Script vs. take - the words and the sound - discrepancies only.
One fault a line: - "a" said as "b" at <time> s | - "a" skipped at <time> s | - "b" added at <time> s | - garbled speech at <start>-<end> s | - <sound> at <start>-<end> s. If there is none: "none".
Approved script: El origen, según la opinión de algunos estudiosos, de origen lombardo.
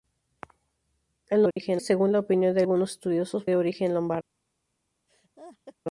- dropout at 1.5-1.6 s
- laugh at 5.1-5.8 s